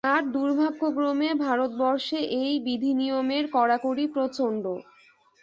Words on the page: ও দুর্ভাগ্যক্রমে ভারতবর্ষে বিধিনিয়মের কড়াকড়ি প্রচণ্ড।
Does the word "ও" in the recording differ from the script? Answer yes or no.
yes